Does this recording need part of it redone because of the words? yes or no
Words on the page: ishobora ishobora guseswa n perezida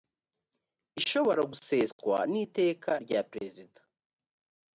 yes